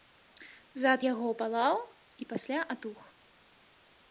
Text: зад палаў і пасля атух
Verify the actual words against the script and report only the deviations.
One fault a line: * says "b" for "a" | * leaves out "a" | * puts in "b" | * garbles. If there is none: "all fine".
* puts in "яго"